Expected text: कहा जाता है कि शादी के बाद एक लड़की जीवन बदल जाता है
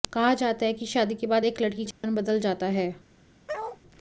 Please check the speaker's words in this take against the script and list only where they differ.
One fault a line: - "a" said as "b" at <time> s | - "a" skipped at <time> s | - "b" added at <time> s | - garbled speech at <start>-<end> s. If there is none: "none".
none